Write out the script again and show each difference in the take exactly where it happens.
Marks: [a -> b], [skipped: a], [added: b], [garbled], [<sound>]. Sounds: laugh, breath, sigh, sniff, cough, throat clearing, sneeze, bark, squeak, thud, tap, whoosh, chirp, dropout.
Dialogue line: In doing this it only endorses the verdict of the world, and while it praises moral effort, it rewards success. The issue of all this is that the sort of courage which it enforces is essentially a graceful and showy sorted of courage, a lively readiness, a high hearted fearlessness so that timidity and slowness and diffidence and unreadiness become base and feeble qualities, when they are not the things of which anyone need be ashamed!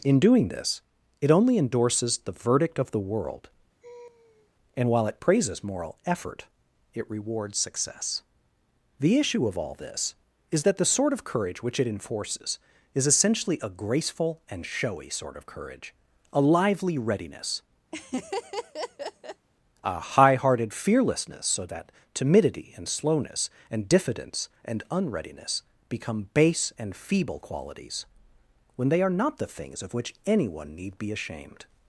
In doing this it only endorses the verdict of the world, [laugh] and while it praises moral effort, it rewards success. The issue of all this is that the sort of courage which it enforces is essentially a graceful and showy [sorted -> sort] of courage, a lively readiness, [laugh] a high hearted fearlessness so that timidity and slowness and diffidence and unreadiness become base and feeble qualities, when they are not the things of which anyone need be ashamed!